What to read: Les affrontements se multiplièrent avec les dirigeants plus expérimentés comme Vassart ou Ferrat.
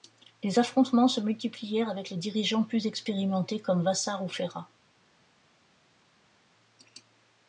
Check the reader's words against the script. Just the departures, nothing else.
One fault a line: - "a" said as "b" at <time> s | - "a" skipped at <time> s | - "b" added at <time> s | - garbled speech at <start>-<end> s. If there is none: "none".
none